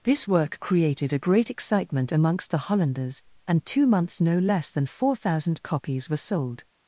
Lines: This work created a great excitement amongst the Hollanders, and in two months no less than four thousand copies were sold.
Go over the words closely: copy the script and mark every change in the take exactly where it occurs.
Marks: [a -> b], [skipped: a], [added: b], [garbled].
This work created a great excitement amongst the Hollanders, and [skipped: in] two months no less than four thousand copies were sold.